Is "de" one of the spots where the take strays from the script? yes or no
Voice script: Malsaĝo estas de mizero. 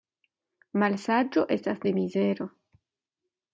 no